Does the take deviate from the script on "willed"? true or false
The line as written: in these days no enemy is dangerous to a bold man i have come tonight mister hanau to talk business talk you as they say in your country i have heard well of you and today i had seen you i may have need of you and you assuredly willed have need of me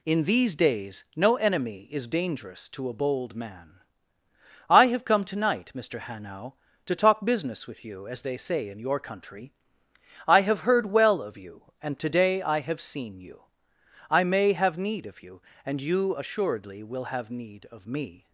true